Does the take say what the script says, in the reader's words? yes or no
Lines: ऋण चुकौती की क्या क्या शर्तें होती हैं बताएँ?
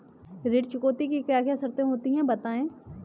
yes